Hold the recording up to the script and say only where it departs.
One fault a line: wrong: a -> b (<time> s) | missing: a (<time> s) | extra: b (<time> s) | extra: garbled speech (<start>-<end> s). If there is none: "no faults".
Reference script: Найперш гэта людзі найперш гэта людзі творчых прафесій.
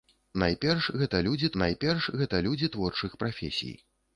no faults